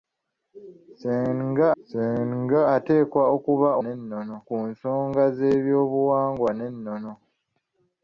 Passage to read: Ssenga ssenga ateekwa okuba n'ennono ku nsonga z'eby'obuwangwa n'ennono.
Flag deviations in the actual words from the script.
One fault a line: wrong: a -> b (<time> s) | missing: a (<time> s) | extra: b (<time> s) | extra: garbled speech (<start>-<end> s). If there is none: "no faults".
no faults